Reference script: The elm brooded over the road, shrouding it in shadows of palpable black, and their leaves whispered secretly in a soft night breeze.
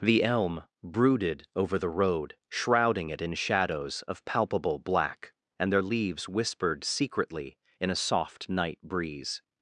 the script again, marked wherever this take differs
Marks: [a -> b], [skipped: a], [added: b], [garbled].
The elm brooded over the road, shrouding it in shadows of palpable black, and their leaves whispered secretly in a soft night breeze.